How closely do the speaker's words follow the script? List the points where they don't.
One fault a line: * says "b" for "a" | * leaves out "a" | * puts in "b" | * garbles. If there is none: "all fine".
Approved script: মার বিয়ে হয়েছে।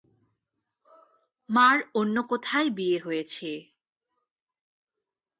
* puts in "অন্য কোথায়"